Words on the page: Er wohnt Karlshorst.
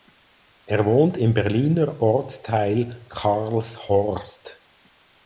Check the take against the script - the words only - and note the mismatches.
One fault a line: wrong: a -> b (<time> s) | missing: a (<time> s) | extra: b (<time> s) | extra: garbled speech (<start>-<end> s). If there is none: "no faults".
extra: im Berliner Ortsteil (1.1 s)